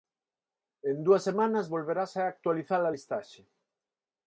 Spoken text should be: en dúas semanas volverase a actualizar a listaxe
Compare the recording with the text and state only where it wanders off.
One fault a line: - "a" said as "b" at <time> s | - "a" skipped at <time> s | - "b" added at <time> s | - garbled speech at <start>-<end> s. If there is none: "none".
none